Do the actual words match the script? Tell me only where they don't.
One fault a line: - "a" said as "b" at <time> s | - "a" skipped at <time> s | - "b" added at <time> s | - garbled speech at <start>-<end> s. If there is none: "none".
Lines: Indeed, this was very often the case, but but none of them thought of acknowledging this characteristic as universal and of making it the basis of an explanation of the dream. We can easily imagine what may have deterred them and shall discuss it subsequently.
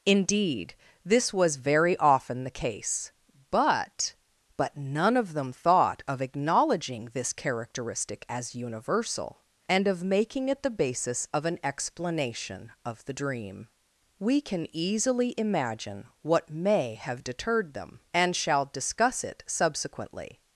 none